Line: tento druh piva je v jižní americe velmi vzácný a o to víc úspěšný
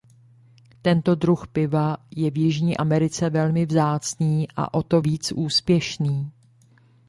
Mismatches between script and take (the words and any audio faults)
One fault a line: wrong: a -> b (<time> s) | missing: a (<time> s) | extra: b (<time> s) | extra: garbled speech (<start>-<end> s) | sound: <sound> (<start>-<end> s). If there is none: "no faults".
no faults